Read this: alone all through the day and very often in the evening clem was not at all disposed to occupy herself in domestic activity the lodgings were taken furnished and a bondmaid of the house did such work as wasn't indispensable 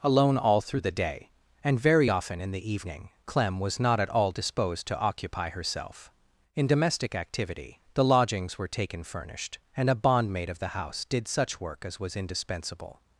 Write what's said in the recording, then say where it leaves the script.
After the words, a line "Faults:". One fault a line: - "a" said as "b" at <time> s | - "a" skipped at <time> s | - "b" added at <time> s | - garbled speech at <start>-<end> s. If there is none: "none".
alone all through the day and very often in the evening clem was not at all disposed to occupy herself in domestic activity the lodgings were taken furnished and a bondmaid of the house did such work as was indispensable
Faults:
- "wasn't" said as "was" at 12.0 s